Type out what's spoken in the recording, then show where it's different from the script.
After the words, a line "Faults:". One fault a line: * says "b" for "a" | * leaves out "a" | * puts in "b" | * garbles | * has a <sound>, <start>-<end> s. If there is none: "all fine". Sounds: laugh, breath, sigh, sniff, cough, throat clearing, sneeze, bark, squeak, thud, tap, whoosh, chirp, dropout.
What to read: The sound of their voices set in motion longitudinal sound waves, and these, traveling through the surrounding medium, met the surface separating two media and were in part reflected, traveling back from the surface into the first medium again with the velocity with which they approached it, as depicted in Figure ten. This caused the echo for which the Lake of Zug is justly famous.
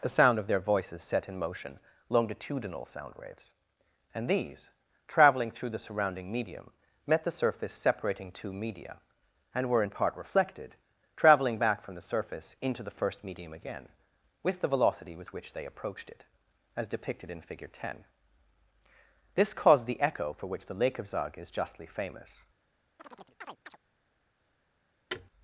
The sound of their voices set in motion longitudinal sound waves, and these, traveling through the surrounding medium, met the surface separating two media and were in part reflected, traveling back from the surface into the first medium again with the velocity with which they approached it, as depicted in Figure ten. This caused the echo for which the Lake of Zug is justly famous.
Faults:
* has a chirp, 23.0-23.8 s
* has a thud, 25.1-25.3 s